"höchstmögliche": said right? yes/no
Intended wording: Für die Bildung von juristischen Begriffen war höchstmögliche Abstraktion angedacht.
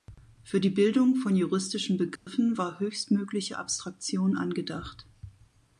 yes